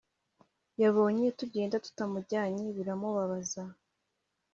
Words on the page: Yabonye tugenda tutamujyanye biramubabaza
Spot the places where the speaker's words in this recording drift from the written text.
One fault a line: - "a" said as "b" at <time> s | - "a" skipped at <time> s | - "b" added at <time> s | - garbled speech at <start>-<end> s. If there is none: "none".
none